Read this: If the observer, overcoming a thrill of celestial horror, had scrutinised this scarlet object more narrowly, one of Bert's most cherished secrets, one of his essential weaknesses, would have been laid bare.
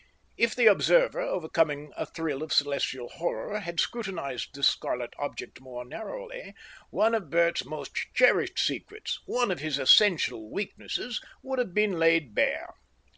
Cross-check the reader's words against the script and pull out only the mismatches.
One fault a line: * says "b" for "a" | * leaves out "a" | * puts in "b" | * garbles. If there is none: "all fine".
all fine